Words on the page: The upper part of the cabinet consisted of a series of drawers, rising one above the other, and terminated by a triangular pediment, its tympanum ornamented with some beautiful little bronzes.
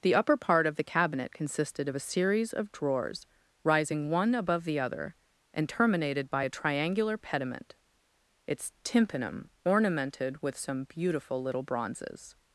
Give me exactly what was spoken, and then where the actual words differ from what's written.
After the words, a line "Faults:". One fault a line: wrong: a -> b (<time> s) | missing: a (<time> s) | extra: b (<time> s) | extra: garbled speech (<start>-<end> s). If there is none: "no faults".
The upper part of the cabinet consisted of a series of drawers, rising one above the other, and terminated by a triangular pediment, its tympanum ornamented with some beautiful little bronzes.
Faults:
no faults